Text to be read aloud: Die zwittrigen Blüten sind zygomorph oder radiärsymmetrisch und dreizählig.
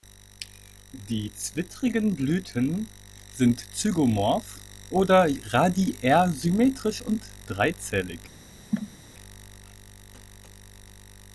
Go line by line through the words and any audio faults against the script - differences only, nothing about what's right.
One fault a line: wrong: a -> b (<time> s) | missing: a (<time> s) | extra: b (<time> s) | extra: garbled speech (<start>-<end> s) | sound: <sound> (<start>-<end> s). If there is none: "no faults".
sound: cough (8.7-9.0 s)